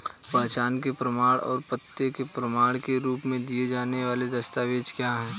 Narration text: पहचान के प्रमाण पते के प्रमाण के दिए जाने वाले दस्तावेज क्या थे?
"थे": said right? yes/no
no